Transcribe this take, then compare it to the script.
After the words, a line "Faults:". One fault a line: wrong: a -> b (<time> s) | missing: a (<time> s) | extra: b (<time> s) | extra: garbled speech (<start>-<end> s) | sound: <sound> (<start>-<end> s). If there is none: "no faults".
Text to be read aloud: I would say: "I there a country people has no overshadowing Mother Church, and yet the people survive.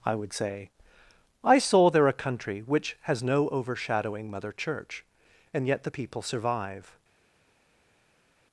I would say: "I saw there a country which has no overshadowing Mother Church, and yet the people survive.
Faults:
extra: saw (1.6 s)
wrong: people -> which (2.6 s)